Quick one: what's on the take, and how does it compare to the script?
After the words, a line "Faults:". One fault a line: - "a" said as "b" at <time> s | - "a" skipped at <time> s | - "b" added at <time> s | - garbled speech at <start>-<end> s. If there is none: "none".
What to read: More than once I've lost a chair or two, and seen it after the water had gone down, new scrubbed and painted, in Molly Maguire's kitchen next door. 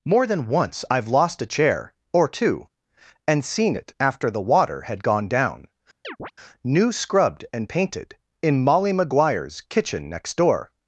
More than once I've lost a chair or two, and seen it after the water had gone down, new scrubbed and painted, in Molly Maguire's kitchen next door.
Faults:
none